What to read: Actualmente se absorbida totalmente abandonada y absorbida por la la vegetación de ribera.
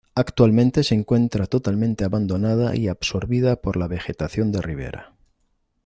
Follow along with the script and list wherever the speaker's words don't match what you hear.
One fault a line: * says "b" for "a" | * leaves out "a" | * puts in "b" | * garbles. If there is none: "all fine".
* says "encuentra" for "absorbida"
* leaves out "la"